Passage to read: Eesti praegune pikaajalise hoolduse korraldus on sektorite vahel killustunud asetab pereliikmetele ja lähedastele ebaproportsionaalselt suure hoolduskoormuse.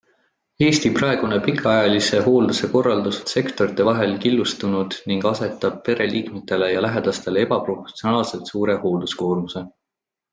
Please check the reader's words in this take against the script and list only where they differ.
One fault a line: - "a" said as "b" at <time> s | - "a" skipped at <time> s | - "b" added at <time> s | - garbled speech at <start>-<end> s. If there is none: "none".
- "ning" added at 5.1 s